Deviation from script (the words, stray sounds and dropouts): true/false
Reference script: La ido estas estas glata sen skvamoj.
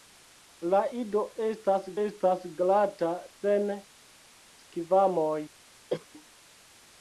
true